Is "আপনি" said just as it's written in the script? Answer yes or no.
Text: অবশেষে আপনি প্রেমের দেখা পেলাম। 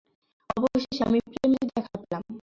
no